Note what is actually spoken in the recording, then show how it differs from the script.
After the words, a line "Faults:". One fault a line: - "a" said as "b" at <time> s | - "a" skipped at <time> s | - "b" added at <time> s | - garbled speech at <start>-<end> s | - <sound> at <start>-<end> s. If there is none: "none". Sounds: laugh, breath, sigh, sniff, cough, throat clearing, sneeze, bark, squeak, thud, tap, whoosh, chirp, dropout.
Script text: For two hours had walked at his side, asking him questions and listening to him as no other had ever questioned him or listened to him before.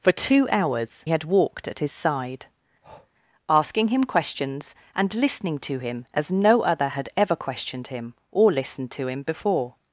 For two hours had walked at his side, asking him questions and listening to him as no other had ever questioned him or listened to him before.
Faults:
- breath at 2.8-3.1 s